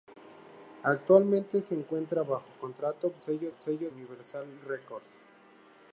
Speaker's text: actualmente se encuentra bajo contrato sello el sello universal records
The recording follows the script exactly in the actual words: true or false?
true